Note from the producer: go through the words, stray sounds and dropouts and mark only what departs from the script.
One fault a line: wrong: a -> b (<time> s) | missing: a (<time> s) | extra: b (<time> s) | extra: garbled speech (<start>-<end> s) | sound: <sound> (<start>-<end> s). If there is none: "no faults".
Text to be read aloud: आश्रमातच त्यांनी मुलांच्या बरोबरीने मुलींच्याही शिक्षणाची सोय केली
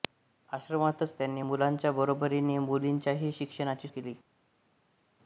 missing: सोय (3.9 s)